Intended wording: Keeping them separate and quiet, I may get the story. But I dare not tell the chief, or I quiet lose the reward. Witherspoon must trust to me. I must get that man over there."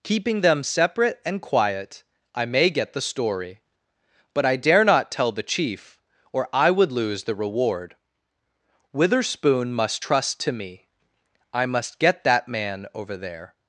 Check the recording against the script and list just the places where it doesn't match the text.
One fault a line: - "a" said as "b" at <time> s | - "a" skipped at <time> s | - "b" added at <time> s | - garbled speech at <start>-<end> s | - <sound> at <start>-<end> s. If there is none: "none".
- "quiet" said as "would" at 6.7 s